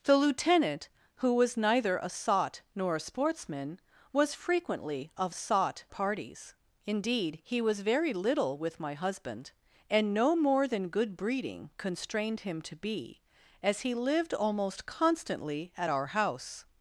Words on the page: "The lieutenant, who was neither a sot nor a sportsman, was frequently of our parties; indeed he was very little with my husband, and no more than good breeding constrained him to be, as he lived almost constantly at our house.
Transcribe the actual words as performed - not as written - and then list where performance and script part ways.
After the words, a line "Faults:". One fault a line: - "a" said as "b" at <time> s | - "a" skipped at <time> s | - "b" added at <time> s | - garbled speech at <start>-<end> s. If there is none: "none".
"The lieutenant, who was neither a sot nor a sportsman, was frequently of sot parties; indeed he was very little with my husband, and no more than good breeding constrained him to be, as he lived almost constantly at our house.
Faults:
- "our" said as "sot" at 5.3 s